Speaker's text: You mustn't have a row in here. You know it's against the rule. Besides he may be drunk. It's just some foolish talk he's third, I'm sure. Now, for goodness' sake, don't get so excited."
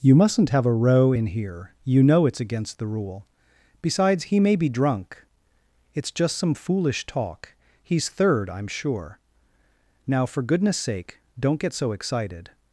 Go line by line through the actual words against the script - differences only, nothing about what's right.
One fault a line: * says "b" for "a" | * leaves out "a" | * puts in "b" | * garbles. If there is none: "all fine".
all fine